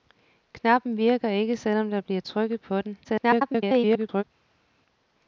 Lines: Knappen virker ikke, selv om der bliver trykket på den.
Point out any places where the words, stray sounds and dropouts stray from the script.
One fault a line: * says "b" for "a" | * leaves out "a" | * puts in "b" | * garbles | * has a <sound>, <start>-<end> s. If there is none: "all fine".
* garbles